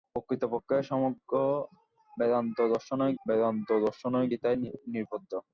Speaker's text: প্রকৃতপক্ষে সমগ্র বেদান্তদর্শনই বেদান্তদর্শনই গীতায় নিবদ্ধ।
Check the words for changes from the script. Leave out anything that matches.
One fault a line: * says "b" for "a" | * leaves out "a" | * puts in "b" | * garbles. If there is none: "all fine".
all fine